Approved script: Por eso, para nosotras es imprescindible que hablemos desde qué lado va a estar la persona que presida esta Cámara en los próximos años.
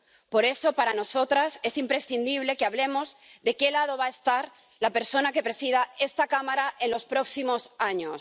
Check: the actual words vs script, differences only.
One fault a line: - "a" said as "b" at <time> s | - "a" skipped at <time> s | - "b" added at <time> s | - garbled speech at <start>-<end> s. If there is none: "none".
- "desde" said as "de" at 3.4 s